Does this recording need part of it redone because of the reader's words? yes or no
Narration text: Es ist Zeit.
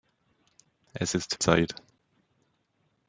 no